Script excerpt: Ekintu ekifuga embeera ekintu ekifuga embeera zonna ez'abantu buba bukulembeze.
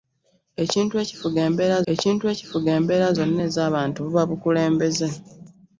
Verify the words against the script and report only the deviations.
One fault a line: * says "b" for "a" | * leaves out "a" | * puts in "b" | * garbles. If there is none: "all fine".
all fine